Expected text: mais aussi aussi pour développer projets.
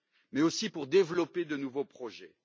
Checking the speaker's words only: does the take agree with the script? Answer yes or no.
no